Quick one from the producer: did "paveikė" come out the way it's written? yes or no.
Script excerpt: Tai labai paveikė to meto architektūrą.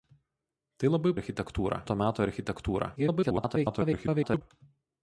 no